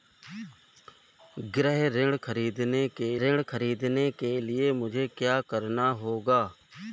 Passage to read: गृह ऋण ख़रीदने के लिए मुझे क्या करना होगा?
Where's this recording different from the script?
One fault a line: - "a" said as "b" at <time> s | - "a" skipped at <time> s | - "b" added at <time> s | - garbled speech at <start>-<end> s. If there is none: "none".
- "ऋण ख़रीदने के" added at 3.2 s